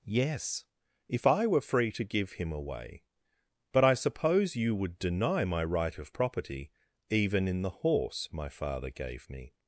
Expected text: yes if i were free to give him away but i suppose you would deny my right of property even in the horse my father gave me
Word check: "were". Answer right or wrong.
right